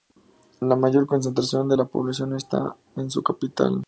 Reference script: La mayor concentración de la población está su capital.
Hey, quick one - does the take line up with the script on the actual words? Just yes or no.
no